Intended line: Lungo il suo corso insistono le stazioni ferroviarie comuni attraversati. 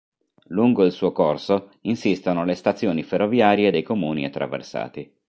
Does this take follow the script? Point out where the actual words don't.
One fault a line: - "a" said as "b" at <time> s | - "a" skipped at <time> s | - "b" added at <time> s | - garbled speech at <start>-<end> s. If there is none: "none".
- "dei" added at 3.7 s